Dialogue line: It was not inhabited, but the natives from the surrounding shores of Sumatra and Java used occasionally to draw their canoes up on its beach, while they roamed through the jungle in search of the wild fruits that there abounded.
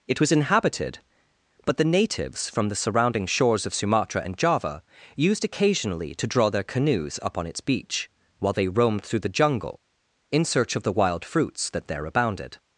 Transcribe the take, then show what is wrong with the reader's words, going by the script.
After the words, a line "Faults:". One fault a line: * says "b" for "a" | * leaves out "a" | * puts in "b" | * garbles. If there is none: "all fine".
It was inhabited, but the natives from the surrounding shores of Sumatra and Java used occasionally to draw their canoes up on its beach, while they roamed through the jungle in search of the wild fruits that there abounded.
Faults:
* leaves out "not"